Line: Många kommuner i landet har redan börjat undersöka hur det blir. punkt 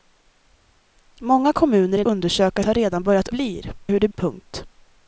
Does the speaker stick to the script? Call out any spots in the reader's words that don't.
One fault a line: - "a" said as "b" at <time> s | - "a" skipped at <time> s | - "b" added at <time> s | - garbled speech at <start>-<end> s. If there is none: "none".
- "landet" said as "undersöka" at 2.0 s
- "undersöka" said as "blir" at 3.3 s
- "blir" skipped at 4.1 s